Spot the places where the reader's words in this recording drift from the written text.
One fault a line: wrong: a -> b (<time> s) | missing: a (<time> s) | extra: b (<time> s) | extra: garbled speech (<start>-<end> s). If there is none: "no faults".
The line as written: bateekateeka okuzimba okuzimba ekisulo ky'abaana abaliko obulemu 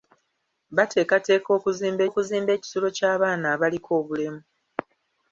no faults